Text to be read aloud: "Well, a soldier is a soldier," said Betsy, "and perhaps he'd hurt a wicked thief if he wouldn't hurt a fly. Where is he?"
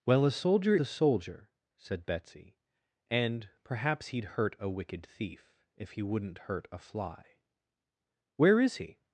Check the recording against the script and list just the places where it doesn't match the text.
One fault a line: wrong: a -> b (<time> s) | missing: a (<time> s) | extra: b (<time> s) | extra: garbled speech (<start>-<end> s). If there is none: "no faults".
missing: is (0.8 s)